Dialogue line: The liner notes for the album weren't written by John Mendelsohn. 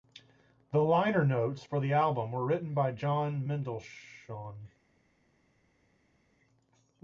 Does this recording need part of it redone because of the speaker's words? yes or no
yes